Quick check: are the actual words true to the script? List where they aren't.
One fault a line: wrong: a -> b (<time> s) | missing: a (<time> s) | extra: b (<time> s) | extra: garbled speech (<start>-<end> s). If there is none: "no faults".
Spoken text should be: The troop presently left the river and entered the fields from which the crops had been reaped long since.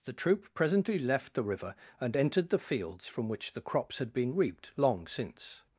no faults